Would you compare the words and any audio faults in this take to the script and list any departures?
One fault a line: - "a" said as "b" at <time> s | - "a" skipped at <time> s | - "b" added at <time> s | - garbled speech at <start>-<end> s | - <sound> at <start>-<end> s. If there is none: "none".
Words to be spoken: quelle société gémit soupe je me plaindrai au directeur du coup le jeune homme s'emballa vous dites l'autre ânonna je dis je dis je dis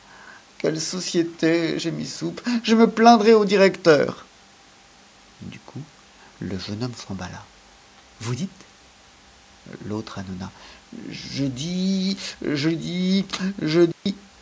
- dropout at 13.9-14.1 s